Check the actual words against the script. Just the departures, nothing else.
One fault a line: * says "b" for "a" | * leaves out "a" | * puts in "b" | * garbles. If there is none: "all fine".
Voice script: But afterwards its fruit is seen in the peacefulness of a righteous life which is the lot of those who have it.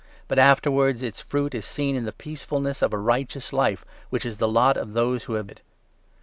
all fine